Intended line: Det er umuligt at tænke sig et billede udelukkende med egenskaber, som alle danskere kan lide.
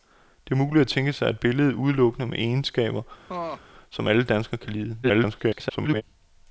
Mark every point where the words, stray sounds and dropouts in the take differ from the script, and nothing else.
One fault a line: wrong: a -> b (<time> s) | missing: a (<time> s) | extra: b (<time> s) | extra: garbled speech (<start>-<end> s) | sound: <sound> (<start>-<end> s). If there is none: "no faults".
sound: laugh (3.3-3.6 s)
extra: garbled speech (5.0-6.0 s)